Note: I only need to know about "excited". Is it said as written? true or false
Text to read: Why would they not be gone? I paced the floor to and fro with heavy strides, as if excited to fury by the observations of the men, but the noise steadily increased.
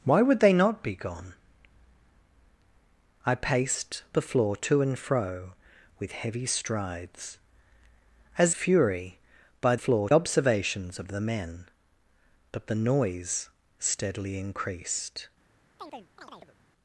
false